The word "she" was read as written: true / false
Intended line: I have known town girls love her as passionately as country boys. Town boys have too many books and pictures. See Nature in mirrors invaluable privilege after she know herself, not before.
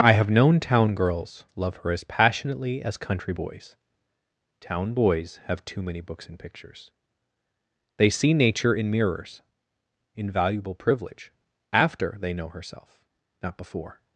false